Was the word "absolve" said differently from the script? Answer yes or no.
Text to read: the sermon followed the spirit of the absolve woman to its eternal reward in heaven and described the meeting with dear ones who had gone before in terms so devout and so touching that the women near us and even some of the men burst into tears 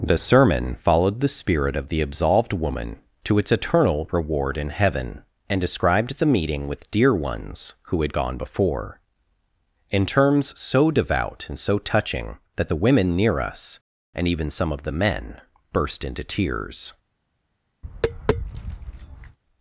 yes